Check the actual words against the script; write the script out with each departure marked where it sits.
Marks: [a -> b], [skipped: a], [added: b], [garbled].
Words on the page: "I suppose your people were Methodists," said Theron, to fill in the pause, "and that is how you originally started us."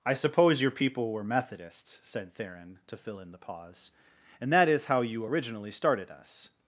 "I suppose your people were Methodists," said Theron, to fill in the pause, "and that is how you originally started us."